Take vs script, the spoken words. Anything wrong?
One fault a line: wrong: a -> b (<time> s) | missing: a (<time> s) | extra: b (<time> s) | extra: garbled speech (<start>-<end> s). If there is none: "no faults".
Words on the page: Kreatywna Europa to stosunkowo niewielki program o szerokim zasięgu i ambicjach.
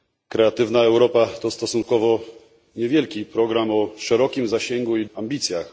no faults